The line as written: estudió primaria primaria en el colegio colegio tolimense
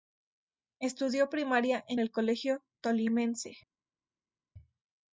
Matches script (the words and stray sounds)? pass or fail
fail